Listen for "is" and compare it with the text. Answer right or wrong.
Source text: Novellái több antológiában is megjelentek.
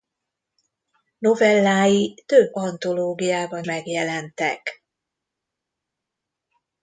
wrong